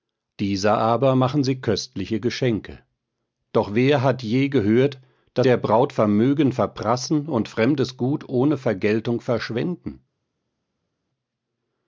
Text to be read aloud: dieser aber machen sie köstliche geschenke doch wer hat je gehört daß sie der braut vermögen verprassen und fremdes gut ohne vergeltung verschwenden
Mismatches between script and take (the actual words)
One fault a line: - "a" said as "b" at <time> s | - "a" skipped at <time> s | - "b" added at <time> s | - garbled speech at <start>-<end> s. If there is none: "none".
- "sie" skipped at 5.5 s